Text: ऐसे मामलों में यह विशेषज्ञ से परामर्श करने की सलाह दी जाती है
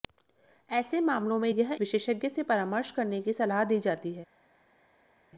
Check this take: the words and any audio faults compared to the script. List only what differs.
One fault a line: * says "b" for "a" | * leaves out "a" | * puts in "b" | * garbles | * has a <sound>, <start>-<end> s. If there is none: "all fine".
all fine